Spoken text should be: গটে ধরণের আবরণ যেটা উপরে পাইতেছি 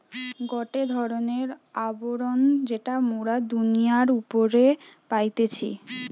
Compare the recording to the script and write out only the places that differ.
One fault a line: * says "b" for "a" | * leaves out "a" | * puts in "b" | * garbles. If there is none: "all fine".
* puts in "মোরা দুনিয়ার"